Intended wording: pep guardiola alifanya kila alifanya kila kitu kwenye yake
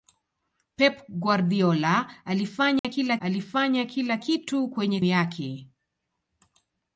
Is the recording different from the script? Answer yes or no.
no